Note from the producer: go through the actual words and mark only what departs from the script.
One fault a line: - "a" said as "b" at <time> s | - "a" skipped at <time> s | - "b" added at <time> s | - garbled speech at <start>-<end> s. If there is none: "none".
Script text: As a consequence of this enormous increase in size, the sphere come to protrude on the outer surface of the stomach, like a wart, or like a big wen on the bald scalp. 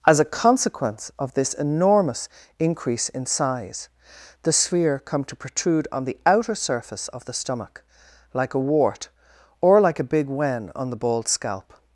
none